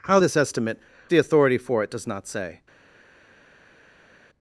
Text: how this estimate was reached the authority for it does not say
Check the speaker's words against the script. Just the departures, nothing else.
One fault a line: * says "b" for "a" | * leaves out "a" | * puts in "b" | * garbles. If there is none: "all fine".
* leaves out "was reached"